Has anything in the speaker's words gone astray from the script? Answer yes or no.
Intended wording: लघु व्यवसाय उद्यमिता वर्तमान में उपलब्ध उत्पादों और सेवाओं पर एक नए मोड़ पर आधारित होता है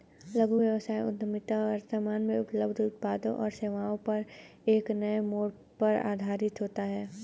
no